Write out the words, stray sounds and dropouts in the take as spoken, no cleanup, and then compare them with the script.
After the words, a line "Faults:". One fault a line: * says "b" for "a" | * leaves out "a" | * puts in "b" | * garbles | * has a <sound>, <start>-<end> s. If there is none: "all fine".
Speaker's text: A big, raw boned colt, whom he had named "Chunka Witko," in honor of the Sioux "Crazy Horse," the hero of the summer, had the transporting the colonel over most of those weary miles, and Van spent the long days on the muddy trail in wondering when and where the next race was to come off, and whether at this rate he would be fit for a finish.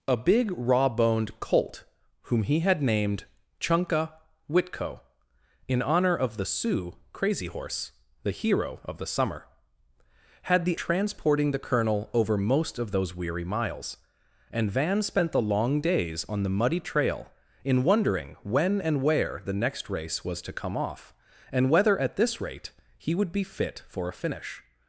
A big, raw boned colt, whom he had named "Chunka Witko," in honor of the Sioux "Crazy Horse," the hero of the summer, had the transporting the colonel over most of those weary miles, and Van spent the long days on the muddy trail in wondering when and where the next race was to come off, and whether at this rate he would be fit for a finish.
Faults:
all fine